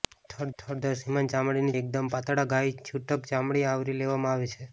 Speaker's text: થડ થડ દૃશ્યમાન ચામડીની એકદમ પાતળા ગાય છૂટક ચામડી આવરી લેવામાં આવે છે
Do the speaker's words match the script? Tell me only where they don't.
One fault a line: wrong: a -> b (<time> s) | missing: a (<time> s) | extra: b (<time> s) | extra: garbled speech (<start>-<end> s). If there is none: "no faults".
no faults